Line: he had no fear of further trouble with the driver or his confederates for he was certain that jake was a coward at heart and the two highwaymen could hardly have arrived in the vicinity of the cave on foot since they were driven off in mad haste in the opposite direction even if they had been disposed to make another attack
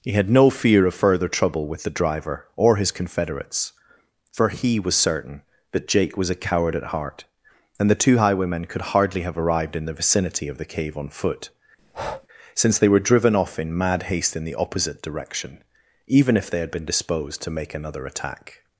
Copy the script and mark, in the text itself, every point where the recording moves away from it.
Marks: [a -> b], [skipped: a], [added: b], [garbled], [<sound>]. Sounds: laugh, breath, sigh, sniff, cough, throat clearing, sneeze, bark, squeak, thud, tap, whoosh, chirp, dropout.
he had no fear of further trouble with the driver or his confederates for he was certain that jake was a coward at heart and the two highwaymen could hardly have arrived in the vicinity of the cave on foot [breath] since they were driven off in mad haste in the opposite direction even if they had been disposed to make another attack